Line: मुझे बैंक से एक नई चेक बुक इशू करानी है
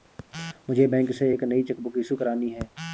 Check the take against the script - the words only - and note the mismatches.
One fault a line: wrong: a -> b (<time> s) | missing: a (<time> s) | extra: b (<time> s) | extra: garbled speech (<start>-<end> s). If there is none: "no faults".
no faults